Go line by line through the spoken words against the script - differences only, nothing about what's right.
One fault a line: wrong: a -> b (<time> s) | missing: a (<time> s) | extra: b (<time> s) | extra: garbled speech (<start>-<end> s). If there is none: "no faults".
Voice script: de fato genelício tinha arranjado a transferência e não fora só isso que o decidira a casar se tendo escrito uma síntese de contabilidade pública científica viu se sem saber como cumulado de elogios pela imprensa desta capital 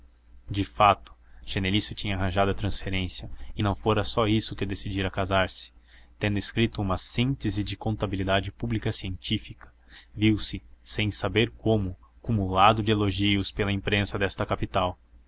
no faults